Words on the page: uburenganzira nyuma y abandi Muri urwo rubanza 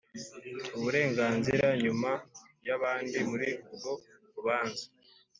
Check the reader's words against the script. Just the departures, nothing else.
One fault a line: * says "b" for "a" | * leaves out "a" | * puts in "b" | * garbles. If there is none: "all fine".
all fine